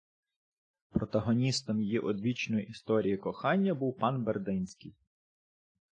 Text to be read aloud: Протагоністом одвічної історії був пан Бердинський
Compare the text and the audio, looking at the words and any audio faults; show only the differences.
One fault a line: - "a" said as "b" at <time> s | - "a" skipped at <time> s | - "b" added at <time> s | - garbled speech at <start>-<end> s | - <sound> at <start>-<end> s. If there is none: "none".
- "її" added at 1.8 s
- "кохання" added at 3.2 s